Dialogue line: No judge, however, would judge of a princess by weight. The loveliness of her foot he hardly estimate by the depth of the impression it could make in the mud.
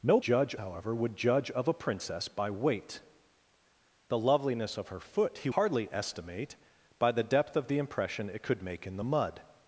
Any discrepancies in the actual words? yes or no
no